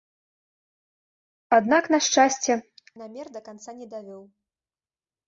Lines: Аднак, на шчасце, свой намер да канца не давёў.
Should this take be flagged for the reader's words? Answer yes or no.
yes